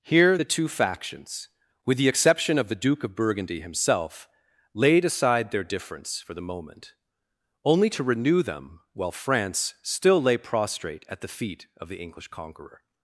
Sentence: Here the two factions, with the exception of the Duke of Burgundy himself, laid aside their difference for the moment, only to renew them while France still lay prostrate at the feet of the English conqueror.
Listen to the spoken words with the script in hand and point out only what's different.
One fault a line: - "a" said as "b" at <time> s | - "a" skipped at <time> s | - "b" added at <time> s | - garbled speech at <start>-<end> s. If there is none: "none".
none